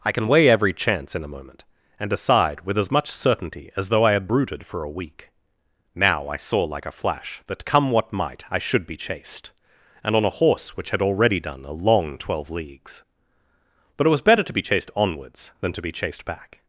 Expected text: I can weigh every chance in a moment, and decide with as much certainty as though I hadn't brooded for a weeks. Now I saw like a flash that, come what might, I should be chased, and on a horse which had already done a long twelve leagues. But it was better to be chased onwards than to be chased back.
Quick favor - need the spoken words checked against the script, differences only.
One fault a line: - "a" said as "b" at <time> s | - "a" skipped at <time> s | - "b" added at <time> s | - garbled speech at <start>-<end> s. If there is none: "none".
- "hadn't" said as "had" at 4.1 s
- "weeks" said as "week" at 4.9 s